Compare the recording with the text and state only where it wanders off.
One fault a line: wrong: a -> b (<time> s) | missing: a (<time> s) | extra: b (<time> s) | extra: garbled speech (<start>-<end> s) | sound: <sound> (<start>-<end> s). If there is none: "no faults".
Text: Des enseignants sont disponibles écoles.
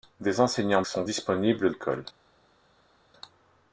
no faults